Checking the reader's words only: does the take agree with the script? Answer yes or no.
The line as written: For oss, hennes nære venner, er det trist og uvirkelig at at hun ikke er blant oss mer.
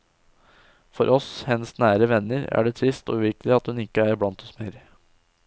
no